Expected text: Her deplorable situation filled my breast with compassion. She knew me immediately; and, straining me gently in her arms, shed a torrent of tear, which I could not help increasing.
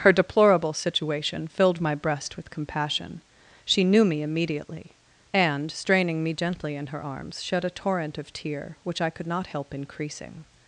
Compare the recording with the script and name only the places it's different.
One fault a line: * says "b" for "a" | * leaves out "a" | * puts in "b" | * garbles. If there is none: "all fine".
all fine